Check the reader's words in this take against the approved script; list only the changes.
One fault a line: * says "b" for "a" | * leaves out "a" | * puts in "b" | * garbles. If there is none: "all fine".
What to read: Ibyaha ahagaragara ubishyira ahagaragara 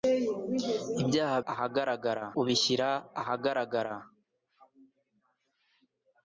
all fine